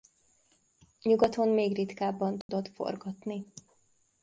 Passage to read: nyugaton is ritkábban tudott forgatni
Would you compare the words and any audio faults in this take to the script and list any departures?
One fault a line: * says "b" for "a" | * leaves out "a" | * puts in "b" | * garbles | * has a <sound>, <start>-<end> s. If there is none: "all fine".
* says "még" for "is"
* has a dropout, 2.4-2.5 s